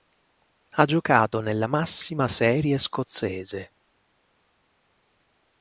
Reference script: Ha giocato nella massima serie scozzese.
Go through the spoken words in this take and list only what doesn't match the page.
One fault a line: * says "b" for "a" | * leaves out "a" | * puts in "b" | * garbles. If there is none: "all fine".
all fine